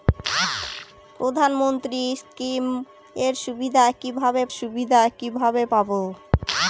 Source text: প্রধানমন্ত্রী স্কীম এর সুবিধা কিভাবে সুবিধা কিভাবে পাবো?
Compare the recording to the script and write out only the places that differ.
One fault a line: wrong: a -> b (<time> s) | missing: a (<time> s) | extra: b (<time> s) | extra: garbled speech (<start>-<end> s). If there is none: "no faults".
no faults